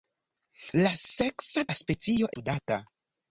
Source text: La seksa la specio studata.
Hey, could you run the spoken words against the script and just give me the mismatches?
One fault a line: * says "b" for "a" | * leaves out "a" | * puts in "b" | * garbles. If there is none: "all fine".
all fine